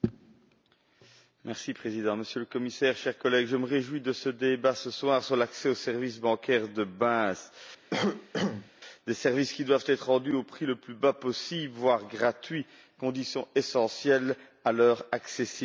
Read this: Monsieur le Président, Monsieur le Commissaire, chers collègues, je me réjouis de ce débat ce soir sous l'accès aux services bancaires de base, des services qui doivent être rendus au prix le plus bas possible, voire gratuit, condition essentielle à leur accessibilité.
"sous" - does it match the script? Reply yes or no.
no